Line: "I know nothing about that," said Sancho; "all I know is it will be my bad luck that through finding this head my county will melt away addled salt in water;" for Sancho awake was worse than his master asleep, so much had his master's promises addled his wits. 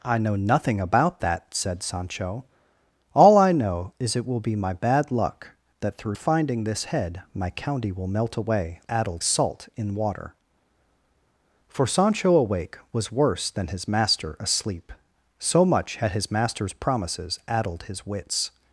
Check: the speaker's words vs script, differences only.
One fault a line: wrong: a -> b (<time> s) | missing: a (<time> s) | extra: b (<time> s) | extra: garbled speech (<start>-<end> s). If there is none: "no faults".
no faults